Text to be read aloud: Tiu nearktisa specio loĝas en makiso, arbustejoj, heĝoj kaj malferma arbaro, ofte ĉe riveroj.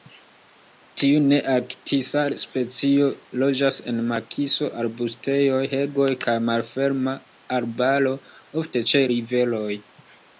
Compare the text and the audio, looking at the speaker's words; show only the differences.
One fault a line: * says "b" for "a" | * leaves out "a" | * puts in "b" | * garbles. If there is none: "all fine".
all fine